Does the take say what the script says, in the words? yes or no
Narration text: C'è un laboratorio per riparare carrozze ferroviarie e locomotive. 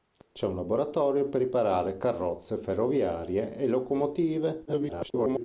no